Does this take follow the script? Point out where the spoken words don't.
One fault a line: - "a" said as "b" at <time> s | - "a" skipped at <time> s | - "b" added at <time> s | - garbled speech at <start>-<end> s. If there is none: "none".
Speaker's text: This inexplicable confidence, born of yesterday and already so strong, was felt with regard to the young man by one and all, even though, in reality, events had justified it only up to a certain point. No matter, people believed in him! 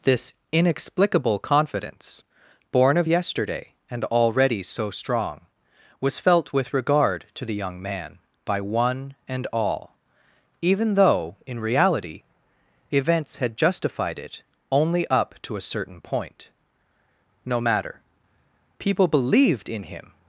none